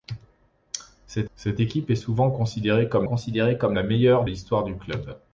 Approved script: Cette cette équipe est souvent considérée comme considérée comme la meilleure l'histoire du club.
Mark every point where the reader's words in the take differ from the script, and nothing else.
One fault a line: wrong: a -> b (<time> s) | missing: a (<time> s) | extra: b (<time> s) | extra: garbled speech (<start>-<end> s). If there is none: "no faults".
no faults